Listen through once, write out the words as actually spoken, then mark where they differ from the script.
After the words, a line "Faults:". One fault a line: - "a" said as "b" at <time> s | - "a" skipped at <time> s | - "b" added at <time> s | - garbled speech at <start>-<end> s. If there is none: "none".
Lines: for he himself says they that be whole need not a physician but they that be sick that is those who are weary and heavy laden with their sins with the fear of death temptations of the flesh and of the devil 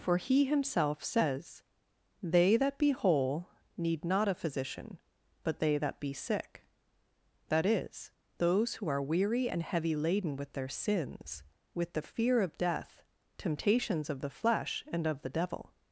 for he himself says they that be whole need not a physician but they that be sick that is those who are weary and heavy laden with their sins with the fear of death temptations of the flesh and of the devil
Faults:
none